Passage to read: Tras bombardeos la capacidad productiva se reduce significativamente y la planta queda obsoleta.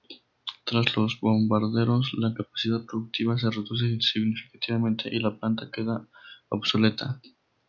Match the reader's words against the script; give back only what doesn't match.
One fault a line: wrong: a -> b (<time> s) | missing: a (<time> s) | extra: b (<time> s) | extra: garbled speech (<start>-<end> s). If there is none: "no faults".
extra: los (1.0 s)